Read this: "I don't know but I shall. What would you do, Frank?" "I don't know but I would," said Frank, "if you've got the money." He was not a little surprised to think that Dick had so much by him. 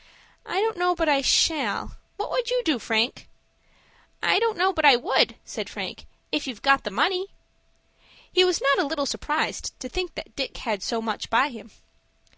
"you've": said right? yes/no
yes